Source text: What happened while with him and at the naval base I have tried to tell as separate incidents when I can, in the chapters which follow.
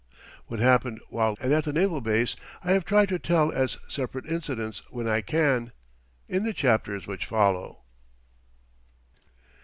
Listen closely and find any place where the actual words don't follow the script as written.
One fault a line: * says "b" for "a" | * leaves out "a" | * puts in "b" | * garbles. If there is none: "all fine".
* leaves out "with him"